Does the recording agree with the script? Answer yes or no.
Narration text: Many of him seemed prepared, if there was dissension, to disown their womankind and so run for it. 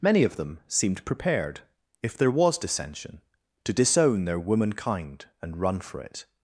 no